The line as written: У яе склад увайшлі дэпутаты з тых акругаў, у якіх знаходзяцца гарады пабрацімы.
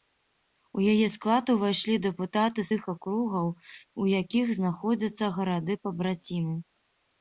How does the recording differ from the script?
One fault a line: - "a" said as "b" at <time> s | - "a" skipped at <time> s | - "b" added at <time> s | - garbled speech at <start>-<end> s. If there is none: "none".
- "з" skipped at 2.7 s